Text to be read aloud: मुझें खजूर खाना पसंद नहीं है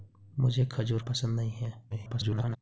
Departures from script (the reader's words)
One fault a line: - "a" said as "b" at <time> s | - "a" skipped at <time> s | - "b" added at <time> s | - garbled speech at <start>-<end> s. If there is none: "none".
- "खाना" skipped at 1.0 s
- garbled speech at 1.9-2.6 s